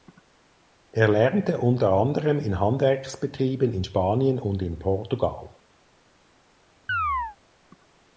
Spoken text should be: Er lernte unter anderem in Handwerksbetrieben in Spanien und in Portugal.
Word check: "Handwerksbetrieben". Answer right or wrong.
right